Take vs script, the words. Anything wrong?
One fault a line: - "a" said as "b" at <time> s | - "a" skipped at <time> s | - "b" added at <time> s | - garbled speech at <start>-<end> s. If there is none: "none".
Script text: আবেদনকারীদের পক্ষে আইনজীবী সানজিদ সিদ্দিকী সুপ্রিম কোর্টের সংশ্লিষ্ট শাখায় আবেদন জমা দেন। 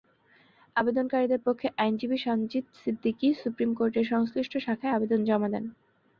none